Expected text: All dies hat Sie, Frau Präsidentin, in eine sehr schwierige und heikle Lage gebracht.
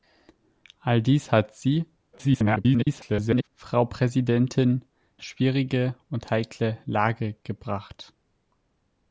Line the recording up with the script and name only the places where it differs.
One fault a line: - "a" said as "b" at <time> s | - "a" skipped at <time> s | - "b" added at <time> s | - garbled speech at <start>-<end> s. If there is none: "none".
- garbled speech at 2.1-3.5 s
- "in eine sehr" skipped at 4.8 s